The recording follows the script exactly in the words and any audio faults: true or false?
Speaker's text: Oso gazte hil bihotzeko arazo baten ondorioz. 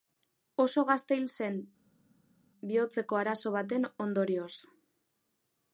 false